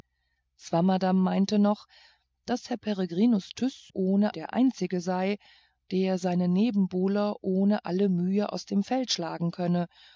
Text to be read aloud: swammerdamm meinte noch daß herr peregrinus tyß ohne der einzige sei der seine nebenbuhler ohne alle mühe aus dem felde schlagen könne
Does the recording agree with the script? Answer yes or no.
yes